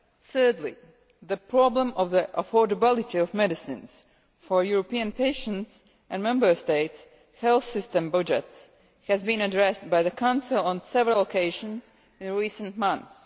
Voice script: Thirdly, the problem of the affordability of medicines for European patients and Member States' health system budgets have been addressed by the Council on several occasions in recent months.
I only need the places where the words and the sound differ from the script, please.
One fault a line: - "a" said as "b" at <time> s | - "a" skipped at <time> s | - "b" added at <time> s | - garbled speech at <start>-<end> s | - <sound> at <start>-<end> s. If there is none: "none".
- "have" said as "has" at 9.1 s